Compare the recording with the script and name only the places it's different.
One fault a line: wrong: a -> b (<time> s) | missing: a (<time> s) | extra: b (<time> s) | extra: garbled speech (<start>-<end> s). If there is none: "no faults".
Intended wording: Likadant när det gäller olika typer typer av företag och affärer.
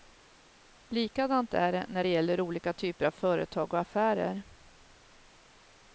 extra: är det (1.5 s)
missing: typer (3.1 s)